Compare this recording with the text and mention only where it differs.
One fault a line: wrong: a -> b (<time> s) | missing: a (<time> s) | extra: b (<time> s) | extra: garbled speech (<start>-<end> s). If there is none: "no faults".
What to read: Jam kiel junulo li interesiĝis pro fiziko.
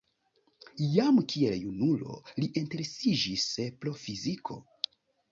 no faults